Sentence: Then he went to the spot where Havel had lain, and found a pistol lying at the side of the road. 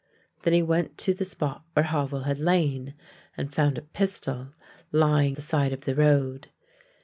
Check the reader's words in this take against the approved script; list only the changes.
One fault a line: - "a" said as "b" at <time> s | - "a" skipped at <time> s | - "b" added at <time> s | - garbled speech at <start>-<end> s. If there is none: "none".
- "at" skipped at 5.4 s